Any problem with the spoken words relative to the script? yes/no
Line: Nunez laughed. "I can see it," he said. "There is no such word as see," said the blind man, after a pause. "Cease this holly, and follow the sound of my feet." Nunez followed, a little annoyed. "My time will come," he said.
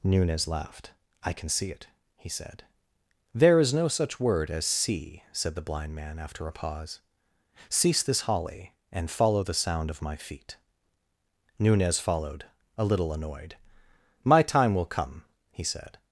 no